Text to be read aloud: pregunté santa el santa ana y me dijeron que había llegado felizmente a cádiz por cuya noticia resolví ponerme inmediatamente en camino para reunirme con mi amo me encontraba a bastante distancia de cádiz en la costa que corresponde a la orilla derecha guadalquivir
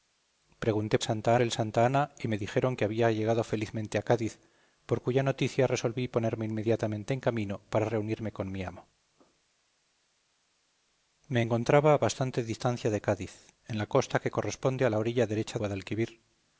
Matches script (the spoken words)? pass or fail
pass